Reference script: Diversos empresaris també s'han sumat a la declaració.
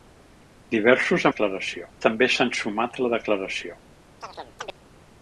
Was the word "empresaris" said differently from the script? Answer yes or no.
yes